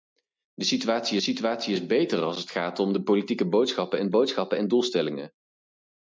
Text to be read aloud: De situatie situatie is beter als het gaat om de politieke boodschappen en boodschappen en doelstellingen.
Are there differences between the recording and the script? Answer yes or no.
no